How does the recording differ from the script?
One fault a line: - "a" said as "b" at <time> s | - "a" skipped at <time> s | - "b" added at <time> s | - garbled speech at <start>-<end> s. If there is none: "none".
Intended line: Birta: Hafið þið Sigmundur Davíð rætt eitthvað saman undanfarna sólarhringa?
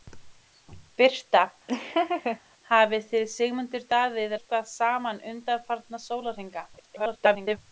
- "rætt" skipped at 4.4 s
- garbled speech at 6.8-7.6 s